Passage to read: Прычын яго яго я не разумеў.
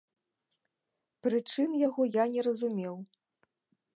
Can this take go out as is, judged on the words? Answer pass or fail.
fail